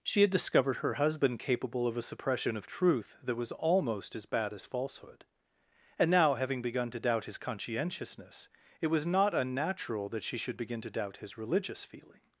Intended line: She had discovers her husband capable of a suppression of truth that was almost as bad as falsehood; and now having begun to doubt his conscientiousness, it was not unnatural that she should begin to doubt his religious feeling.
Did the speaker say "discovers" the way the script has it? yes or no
no